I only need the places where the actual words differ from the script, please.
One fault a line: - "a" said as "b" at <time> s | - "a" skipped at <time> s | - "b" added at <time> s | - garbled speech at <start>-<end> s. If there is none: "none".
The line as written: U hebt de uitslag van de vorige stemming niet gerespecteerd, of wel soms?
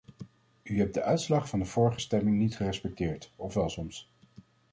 none